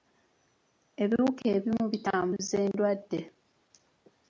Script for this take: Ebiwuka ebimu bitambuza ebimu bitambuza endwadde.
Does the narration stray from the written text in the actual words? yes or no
yes